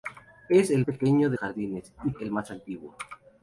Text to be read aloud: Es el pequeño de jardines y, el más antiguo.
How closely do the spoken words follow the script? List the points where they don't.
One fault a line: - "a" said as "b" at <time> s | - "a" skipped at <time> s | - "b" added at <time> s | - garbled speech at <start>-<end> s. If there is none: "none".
none